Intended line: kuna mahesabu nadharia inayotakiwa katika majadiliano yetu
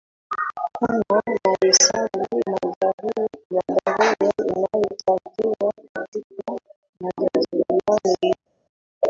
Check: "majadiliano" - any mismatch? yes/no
no